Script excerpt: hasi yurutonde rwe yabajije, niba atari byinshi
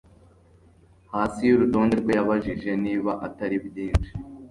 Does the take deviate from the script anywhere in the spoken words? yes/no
no